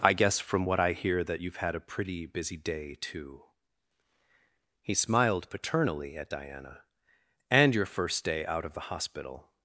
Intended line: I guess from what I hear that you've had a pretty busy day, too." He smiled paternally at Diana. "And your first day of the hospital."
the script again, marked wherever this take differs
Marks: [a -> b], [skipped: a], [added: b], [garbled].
I guess from what I hear that you've had a pretty busy day, too." He smiled paternally at Diana. "And your first day [added: out] of the hospital."